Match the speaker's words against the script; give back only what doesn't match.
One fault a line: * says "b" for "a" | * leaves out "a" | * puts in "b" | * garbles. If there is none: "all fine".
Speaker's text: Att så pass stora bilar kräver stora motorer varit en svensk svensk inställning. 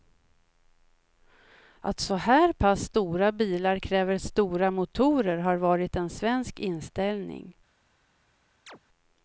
* puts in "här"
* puts in "har"
* leaves out "svensk"